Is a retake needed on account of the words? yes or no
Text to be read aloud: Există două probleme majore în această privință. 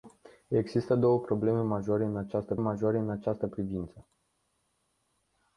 yes